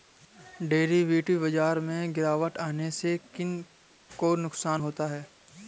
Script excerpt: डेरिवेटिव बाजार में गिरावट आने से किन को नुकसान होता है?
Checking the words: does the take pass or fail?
pass